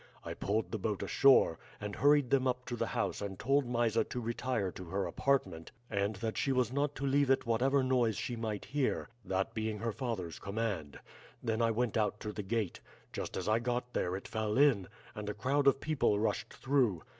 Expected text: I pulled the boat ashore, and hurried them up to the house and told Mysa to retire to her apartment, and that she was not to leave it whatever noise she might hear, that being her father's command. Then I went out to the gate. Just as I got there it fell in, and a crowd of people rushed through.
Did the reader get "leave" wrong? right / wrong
right